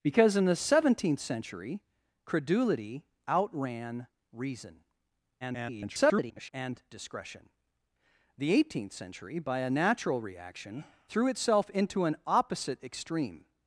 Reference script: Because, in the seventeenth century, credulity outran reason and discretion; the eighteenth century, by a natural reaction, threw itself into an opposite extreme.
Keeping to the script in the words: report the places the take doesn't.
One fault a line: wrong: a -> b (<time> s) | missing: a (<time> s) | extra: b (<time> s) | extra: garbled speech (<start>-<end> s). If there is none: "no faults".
extra: garbled speech (5.4-6.5 s)